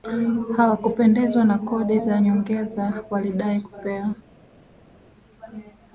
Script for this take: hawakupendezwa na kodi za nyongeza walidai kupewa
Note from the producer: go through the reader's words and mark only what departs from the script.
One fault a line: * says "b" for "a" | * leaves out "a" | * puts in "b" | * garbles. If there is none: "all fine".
all fine